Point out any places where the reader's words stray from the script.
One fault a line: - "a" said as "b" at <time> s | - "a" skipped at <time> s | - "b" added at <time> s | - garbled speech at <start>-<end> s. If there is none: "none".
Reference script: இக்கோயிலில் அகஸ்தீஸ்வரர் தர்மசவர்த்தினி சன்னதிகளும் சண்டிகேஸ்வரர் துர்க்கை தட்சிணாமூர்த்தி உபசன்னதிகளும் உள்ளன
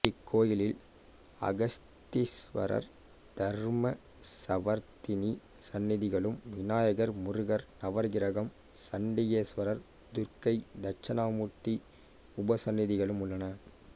- "விநாயகர் முருகர் நவகிரகம்" added at 6.5 s